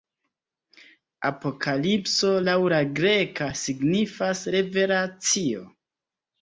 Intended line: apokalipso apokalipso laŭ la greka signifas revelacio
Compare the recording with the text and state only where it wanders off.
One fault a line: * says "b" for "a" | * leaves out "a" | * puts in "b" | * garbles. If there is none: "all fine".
* leaves out "apokalipso"